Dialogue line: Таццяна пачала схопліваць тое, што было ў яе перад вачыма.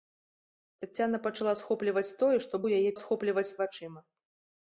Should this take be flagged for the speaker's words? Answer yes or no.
yes